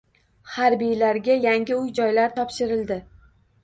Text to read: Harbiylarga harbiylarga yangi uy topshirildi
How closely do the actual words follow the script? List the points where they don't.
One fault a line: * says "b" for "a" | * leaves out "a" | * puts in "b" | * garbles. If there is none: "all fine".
* leaves out "harbiylarga"
* puts in "joylar"